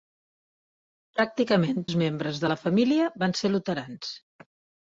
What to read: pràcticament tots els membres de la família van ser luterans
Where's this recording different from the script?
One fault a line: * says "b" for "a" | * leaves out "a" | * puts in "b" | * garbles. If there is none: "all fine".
* leaves out "tots"